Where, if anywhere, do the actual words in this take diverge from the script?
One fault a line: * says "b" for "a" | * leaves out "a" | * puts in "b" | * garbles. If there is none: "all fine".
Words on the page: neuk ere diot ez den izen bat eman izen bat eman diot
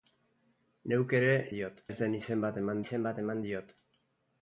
all fine